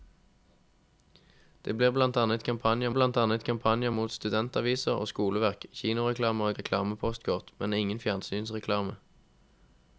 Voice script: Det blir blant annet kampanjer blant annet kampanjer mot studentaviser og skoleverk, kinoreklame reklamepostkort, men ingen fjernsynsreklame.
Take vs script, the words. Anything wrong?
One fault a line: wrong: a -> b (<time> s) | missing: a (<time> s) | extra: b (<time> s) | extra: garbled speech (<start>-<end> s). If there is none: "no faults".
no faults